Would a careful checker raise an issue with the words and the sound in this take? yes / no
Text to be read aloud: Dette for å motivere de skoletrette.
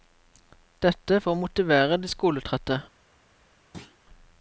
yes